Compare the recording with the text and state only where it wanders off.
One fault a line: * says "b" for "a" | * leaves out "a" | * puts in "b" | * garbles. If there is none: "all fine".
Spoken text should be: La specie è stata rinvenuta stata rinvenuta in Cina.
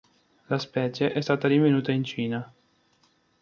* leaves out "stata rinvenuta"